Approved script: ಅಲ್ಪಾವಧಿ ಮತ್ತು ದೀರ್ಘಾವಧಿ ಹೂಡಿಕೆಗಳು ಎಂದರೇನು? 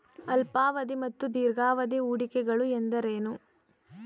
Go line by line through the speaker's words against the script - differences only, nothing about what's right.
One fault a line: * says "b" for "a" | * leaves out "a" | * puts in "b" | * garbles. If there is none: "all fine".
all fine